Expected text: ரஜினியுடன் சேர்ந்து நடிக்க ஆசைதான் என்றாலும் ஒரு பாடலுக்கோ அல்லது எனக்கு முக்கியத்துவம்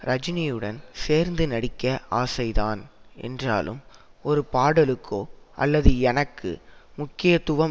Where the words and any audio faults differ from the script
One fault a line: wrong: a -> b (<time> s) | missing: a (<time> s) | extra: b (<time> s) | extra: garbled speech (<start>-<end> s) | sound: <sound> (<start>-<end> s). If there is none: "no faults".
no faults